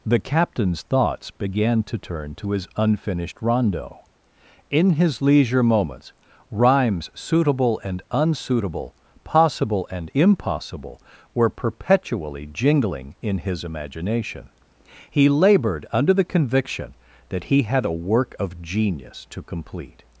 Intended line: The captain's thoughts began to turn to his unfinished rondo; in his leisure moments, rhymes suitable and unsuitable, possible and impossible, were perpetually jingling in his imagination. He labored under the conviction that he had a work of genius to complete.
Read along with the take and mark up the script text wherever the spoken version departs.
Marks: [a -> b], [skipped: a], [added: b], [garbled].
The captain's thoughts began to turn to his unfinished rondo; in his leisure moments, rhymes suitable and unsuitable, possible and impossible, were perpetually jingling in his imagination. He labored under the conviction that he had a work of genius to complete.